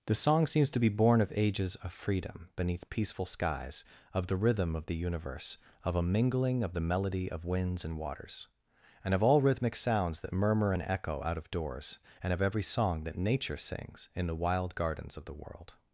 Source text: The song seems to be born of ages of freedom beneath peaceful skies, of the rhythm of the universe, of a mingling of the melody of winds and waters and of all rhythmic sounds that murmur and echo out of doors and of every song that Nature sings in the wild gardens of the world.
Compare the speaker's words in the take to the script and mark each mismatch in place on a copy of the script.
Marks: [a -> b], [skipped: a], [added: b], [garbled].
The song seems to be born of ages of freedom beneath peaceful skies, of the rhythm of the universe, of a mingling of the melody of winds and waters and of all rhythmic sounds that murmur and echo out of doors and of every song that Nature sings in the wild gardens of the world.